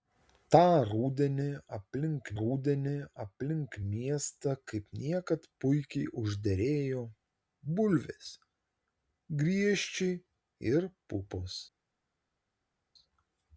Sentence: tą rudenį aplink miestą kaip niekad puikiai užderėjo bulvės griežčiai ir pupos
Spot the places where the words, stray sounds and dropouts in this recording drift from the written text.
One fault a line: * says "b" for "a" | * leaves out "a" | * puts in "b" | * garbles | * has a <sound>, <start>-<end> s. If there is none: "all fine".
* puts in "rudenį aplink"